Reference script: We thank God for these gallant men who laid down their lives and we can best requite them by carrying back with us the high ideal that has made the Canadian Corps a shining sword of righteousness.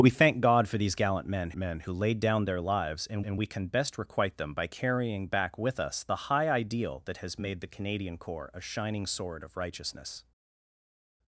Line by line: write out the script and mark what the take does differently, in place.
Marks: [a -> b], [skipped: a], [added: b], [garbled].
We thank God for these gallant men [added: men] who laid down their lives and [added: and] we can best requite them by carrying back with us the high ideal that has made the Canadian Corps a shining sword of righteousness.